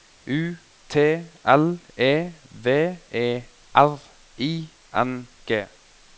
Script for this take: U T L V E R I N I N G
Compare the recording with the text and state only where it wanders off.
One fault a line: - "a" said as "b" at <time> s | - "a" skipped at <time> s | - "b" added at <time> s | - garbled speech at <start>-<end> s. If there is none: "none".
- "E" added at 1.9 s
- "I N" skipped at 5.3 s